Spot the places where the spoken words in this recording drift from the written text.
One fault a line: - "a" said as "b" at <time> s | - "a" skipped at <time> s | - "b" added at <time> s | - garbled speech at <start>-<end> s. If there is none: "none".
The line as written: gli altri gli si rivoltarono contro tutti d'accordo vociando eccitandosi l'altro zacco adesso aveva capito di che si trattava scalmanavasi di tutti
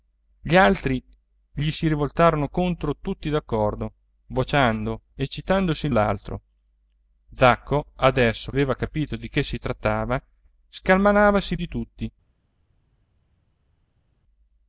none